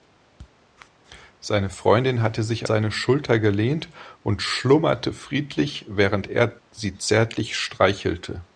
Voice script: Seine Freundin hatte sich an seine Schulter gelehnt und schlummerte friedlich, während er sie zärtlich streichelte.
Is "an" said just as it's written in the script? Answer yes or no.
no